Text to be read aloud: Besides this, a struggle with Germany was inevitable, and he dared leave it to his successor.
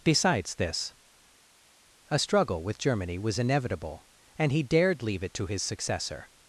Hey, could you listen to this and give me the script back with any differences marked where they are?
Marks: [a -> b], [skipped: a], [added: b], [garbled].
Besides this, a struggle with Germany was inevitable, and he dared leave it to his successor.